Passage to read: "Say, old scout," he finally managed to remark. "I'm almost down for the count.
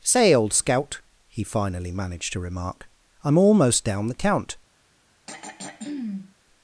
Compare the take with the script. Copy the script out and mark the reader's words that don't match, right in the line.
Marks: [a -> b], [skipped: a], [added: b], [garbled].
"Say, old scout," he finally managed to remark. "I'm almost down [skipped: for] the count.